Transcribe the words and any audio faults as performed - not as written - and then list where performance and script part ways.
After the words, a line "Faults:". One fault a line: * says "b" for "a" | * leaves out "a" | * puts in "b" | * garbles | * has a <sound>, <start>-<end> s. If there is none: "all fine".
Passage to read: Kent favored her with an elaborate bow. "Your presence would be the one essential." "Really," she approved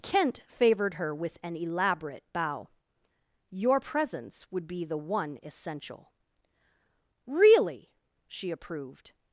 Kent favored her with an elaborate bow. "Your presence would be the one essential." "Really," she approved
Faults:
all fine